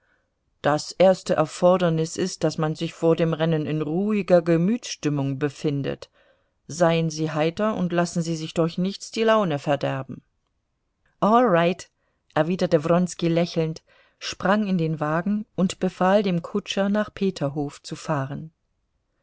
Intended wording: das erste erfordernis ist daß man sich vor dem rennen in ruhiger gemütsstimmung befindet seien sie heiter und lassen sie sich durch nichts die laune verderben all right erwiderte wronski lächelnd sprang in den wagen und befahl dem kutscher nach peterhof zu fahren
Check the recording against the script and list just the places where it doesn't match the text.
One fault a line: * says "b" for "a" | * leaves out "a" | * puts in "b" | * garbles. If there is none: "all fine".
all fine